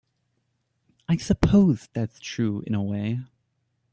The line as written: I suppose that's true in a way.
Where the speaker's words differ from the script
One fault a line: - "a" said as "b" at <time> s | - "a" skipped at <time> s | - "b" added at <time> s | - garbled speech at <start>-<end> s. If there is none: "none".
none